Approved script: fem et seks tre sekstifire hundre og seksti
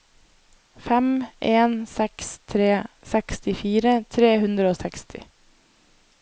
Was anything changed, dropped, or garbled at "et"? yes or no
yes